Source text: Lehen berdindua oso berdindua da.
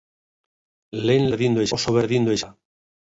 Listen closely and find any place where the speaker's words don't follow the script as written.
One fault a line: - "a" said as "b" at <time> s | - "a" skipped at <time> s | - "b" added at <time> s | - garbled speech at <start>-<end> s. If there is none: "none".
none